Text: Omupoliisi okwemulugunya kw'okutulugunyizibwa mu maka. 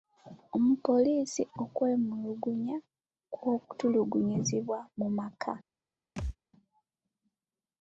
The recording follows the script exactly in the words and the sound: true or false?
false